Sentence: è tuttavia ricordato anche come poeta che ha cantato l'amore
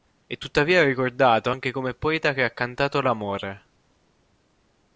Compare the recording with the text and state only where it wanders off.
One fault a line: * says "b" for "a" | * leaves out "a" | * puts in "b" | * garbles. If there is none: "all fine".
all fine